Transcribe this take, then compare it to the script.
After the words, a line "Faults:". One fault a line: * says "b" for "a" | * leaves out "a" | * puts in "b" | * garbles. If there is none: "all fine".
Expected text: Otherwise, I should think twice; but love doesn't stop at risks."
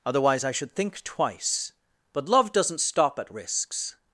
Otherwise, I should think twice; but love doesn't stop at risks."
Faults:
all fine